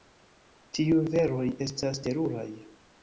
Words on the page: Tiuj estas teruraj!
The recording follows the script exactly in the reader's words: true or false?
false